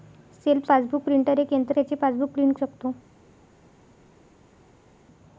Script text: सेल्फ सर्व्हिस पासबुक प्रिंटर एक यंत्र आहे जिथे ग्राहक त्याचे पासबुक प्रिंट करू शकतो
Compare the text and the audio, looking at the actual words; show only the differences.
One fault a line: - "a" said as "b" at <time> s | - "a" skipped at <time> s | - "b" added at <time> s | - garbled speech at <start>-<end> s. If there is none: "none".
- "सर्व्हिस" skipped at 0.7 s
- "आहे जिथे ग्राहक" skipped at 1.8 s
- "करू" skipped at 2.5 s